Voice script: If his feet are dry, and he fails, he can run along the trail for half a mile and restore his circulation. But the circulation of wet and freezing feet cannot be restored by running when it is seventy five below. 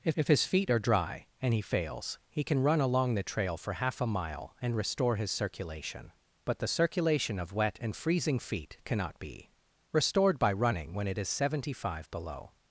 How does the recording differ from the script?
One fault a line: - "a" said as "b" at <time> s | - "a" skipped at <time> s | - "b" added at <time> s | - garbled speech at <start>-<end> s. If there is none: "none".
- "if" added at 0.1 s